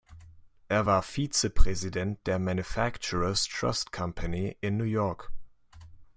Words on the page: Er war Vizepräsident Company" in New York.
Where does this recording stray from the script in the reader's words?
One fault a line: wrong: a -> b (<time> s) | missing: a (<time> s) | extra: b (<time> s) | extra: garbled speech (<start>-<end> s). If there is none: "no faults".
extra: der Manufacturers Trust (2.3 s)